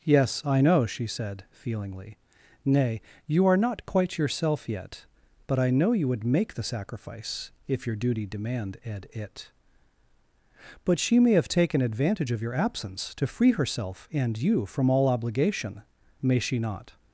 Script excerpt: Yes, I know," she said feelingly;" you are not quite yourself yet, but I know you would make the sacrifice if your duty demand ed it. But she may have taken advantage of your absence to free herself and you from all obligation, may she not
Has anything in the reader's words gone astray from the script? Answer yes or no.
yes